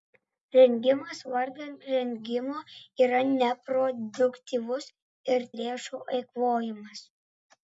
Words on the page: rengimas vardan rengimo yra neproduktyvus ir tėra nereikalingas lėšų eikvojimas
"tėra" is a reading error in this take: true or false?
true